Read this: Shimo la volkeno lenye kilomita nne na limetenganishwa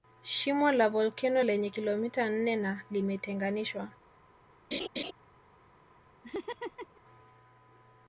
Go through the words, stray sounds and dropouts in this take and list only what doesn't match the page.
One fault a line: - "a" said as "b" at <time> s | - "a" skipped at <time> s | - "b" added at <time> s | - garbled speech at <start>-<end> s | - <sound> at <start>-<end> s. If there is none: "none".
- laugh at 4.7-5.1 s
- laugh at 6.2-7.0 s